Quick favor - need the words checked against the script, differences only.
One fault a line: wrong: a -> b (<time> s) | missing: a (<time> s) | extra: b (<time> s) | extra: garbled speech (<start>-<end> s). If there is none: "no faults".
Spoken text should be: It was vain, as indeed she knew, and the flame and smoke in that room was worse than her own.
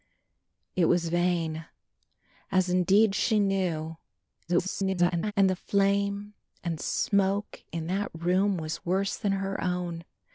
extra: garbled speech (4.5-5.3 s)